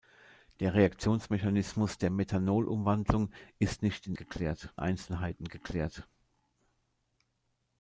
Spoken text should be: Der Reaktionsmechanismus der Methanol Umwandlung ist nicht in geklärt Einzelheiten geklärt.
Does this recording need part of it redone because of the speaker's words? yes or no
no